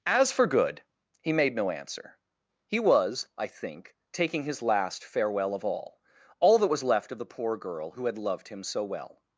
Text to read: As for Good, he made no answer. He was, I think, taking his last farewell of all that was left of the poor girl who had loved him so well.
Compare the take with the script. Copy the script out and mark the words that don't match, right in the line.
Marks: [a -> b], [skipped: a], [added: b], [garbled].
As for Good, he made no answer. He was, I think, taking his last farewell of all [added: all] that was left of the poor girl who had loved him so well.